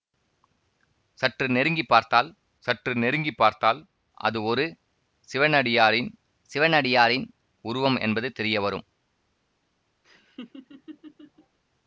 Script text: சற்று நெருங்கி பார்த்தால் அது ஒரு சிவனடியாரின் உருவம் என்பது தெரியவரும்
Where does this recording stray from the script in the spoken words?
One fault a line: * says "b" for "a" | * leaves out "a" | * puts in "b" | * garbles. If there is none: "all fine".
* puts in "சற்று நெருங்கி பார்த்தால்"
* puts in "சிவனடியாரின்"